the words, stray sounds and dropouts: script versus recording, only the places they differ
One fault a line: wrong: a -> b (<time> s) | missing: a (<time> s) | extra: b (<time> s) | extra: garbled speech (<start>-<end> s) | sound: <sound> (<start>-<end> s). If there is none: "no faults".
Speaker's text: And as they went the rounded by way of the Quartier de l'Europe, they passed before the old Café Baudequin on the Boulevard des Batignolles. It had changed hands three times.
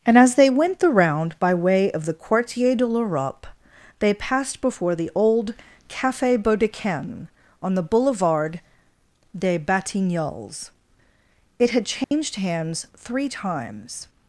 wrong: rounded -> round (0.9 s)
sound: dropout (12.0-12.1 s)